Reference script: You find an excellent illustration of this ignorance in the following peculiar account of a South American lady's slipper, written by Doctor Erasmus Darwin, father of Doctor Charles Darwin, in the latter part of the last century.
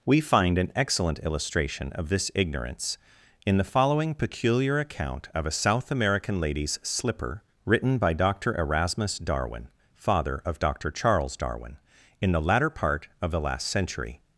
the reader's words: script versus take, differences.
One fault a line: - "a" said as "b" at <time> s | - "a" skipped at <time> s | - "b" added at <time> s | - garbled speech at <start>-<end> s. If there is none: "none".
- "You" said as "We" at 0.0 s